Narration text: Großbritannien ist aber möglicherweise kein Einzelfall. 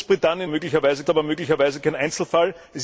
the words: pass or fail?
fail